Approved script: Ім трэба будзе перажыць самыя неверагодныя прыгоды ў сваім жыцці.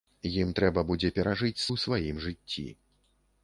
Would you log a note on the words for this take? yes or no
yes